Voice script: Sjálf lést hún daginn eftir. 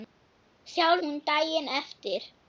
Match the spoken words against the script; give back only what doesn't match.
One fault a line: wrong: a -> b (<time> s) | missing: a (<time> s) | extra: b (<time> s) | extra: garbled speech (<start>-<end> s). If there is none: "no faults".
missing: lést (1.0 s)